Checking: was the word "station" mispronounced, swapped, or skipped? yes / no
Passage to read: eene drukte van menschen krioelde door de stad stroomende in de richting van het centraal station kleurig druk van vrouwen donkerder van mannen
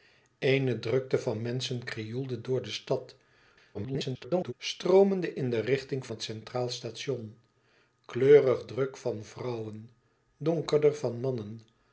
no